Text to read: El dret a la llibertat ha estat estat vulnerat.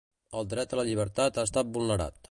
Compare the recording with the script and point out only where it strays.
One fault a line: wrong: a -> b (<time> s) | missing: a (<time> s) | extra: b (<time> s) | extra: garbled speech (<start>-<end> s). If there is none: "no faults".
missing: estat (1.7 s)